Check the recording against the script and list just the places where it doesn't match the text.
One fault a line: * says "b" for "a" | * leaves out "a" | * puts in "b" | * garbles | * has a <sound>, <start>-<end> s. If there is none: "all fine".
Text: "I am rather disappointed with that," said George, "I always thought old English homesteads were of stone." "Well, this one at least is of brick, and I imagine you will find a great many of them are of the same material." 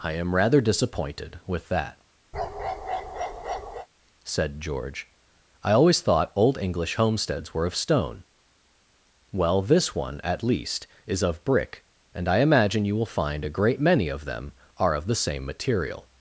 * has a bark, 2.3-3.9 s